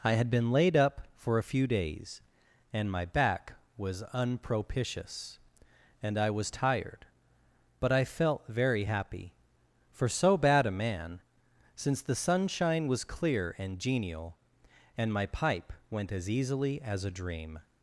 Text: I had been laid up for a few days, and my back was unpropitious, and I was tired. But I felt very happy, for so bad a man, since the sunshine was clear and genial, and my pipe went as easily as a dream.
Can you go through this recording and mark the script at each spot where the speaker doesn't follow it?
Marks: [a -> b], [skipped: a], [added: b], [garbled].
I had been laid up for a few days, and my back was unpropitious, and I was tired. But I felt very happy, for so bad a man, since the sunshine was clear and genial, and my pipe went as easily as a dream.